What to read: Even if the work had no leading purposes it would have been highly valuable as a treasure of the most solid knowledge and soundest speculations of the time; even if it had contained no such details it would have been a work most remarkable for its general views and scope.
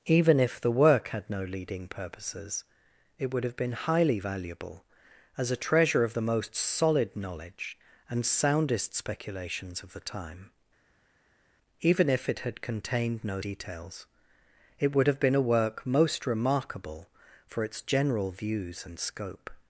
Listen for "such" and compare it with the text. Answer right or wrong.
wrong